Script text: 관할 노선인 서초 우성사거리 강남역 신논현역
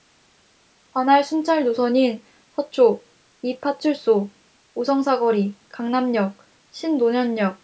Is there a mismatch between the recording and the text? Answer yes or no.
yes